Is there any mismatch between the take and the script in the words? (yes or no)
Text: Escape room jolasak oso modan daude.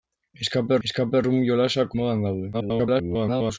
yes